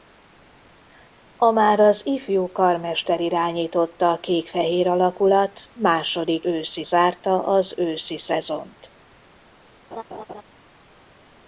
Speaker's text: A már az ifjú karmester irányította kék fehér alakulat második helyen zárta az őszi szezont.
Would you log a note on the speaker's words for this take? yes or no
yes